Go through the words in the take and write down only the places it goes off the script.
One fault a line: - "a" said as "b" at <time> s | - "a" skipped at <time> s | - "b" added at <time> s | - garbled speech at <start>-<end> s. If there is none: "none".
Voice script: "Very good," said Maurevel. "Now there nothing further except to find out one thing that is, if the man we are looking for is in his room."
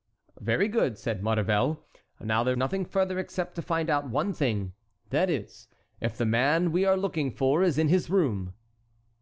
none